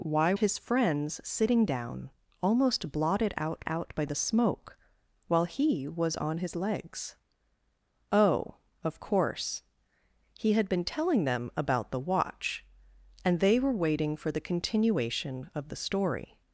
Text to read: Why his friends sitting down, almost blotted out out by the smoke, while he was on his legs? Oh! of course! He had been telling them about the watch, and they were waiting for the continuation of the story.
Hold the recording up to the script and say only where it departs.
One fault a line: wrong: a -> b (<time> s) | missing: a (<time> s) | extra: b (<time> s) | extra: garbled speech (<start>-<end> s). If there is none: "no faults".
no faults